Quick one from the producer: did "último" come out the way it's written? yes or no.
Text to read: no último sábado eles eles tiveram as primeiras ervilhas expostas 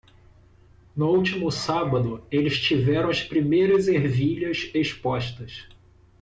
yes